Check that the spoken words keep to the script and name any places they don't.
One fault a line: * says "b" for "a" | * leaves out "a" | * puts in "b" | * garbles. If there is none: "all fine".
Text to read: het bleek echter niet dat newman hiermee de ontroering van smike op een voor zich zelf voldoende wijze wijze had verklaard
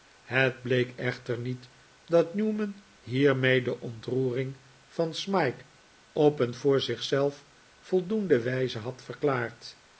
* leaves out "wijze"